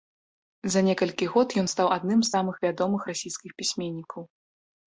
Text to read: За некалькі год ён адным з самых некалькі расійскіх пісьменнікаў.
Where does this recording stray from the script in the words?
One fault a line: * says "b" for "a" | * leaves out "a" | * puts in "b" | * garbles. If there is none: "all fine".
* puts in "стаў"
* says "вядомых" for "некалькі"